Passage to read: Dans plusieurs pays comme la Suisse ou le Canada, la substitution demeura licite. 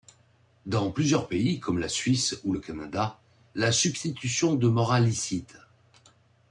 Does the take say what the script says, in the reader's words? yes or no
yes